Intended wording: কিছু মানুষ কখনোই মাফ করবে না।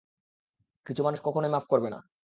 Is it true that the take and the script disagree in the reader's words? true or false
false